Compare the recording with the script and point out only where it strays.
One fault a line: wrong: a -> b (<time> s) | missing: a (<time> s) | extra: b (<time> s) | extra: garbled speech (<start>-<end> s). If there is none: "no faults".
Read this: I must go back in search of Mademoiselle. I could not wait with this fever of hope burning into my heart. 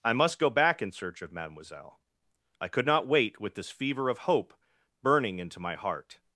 no faults